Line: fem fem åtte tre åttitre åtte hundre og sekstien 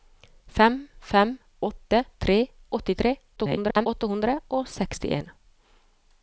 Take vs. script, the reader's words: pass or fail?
fail